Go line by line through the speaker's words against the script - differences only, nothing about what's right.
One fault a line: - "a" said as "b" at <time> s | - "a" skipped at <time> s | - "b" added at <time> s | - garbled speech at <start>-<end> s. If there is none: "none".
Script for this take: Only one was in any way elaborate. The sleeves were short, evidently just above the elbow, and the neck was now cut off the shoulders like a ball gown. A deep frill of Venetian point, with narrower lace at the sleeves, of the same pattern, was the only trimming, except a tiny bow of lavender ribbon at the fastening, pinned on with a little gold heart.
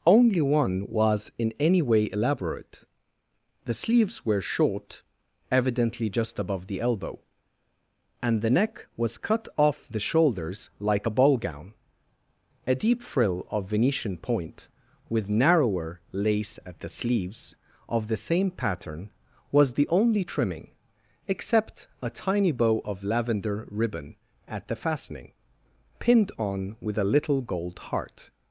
- "now" skipped at 9.2 s